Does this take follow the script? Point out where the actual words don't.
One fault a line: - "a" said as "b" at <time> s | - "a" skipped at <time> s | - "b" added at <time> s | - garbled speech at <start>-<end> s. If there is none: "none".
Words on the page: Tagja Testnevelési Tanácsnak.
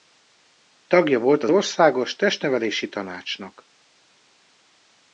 - "volt az Országos" added at 1.2 s